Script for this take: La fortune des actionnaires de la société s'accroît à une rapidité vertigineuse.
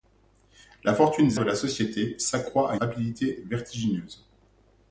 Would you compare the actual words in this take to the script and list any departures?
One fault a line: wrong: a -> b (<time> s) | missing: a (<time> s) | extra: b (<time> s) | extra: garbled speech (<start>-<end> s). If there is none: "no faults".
missing: actionnaires (1.4 s)
missing: une (2.7 s)